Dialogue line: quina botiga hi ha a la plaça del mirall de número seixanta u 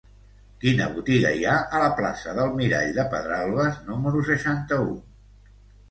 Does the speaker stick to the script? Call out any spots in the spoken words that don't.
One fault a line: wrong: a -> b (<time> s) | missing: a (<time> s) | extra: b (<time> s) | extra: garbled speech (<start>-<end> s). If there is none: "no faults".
extra: pedralbes (3.2 s)